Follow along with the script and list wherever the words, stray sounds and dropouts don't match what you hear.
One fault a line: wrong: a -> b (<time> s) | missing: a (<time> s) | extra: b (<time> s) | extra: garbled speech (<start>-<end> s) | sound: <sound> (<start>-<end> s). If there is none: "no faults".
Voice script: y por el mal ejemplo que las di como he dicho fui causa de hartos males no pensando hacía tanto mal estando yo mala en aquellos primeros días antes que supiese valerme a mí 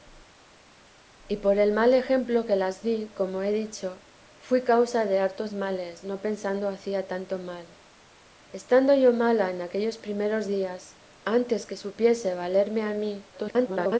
extra: garbled speech (13.3-14.0 s)